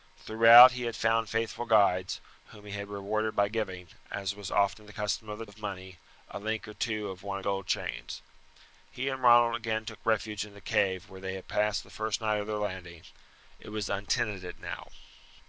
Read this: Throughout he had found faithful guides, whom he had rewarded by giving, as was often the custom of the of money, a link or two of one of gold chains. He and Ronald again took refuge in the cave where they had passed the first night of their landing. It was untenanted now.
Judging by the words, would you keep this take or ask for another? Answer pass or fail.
pass